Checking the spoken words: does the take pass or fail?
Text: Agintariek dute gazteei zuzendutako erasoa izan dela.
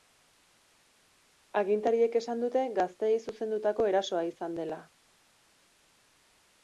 fail